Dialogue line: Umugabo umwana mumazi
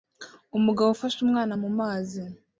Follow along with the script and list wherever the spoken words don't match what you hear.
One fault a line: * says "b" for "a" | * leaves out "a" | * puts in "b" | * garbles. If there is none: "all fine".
* puts in "ufashe"